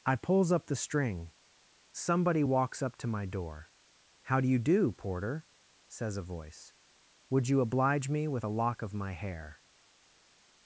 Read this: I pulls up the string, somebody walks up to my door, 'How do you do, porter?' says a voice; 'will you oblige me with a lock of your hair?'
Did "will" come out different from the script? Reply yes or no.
yes